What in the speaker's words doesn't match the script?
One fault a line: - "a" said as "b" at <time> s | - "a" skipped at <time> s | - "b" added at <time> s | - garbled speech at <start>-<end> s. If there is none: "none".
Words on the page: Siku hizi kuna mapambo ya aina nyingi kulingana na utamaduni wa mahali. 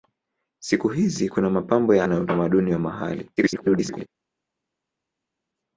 - "aina nyingi kulingana" skipped at 2.1 s
- garbled speech at 3.4-4.1 s